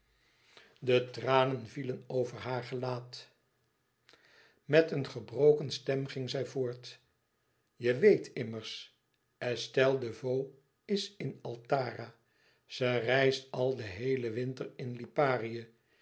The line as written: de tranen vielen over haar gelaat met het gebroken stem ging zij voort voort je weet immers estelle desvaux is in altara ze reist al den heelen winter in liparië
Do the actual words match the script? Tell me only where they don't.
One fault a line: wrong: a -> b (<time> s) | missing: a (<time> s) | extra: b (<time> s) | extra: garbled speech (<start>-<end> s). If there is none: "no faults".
wrong: het -> een (4.9 s)
missing: voort (7.0 s)